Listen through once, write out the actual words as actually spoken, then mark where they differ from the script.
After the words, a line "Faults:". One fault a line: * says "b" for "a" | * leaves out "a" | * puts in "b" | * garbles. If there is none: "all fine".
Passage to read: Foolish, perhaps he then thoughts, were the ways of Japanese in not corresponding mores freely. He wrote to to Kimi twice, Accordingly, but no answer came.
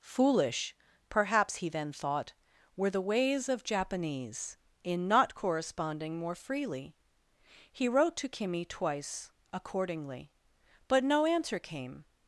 Foolish, perhaps he then thought, were the ways of Japanese in not corresponding more freely. He wrote to Kimi twice, Accordingly, but no answer came.
Faults:
* says "thought" for "thoughts"
* says "more" for "mores"
* leaves out "to"